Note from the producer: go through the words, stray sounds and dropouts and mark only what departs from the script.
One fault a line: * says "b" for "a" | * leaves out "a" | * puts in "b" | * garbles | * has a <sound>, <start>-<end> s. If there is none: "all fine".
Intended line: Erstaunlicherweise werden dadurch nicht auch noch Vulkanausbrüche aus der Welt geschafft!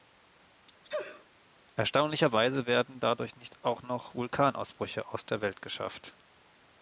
* has a sneeze, 0.8-1.3 s